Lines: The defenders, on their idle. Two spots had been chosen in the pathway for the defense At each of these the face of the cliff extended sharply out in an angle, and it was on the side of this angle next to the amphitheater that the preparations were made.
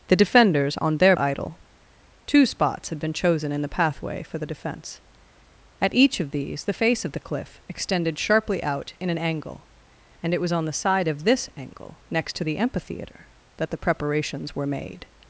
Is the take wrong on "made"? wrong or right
right